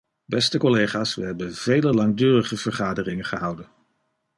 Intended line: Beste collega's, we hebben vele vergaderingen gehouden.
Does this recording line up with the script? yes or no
no